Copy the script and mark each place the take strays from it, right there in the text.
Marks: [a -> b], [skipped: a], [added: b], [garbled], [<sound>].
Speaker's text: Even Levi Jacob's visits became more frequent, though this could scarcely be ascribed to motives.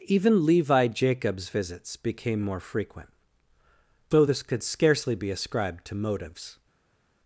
Even Levi Jacob's visits became more frequent, though this could scarcely be ascribed to motives.